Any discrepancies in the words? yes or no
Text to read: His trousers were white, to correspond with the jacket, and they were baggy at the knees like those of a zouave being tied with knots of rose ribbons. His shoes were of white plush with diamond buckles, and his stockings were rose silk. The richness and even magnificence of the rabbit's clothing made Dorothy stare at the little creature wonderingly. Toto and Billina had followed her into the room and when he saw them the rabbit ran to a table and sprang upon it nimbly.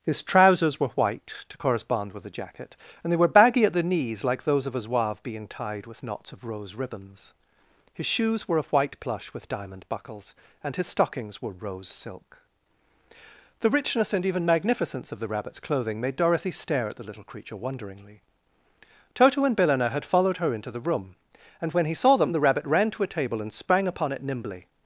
no